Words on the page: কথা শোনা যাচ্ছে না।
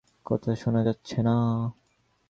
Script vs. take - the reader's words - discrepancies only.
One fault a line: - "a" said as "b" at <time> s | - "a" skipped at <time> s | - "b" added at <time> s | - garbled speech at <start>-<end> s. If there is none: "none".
none